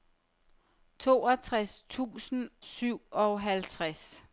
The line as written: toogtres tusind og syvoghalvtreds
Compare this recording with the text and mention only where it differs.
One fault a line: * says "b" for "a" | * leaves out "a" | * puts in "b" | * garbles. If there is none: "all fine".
* leaves out "og"